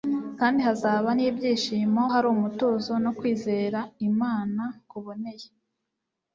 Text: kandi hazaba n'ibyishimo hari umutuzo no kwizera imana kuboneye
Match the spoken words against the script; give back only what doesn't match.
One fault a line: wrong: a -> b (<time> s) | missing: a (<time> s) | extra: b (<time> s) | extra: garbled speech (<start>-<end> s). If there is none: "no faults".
no faults